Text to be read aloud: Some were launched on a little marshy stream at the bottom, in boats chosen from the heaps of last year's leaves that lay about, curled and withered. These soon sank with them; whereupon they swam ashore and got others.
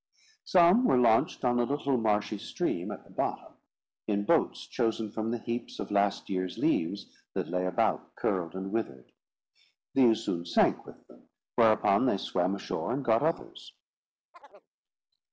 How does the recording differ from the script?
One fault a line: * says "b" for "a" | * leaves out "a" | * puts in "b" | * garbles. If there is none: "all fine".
all fine